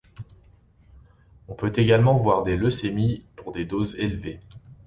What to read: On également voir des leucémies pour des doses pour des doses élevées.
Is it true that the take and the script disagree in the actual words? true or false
true